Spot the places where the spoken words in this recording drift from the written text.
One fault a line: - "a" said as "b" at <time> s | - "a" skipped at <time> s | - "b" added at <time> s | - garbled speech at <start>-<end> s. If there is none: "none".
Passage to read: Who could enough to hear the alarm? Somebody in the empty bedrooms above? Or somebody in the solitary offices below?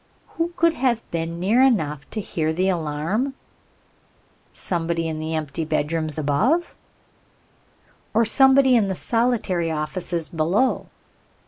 - "have been near" added at 0.7 s